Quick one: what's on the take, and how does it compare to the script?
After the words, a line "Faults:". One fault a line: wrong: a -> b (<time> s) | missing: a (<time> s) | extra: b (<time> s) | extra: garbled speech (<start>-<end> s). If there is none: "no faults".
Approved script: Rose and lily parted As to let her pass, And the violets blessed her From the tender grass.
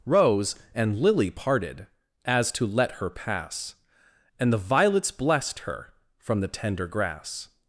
Rose and lily parted As to let her pass, And the violets blessed her From the tender grass.
Faults:
no faults